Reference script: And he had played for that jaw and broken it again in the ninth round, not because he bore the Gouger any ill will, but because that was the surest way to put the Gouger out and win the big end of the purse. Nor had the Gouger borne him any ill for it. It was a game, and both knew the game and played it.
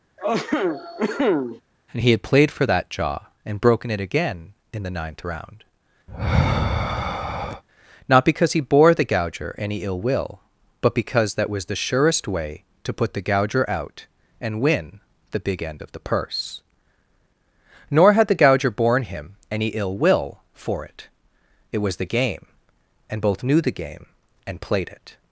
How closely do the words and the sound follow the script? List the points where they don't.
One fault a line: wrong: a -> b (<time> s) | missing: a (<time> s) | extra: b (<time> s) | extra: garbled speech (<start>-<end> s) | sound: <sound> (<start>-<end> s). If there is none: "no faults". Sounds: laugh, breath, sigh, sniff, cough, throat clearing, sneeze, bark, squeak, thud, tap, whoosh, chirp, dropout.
sound: cough (0.2-1.6 s)
sound: sigh (6.1-7.6 s)
extra: will (20.0 s)
wrong: a -> the (22.0 s)